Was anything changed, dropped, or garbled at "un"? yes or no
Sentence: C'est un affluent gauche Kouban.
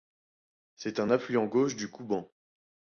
no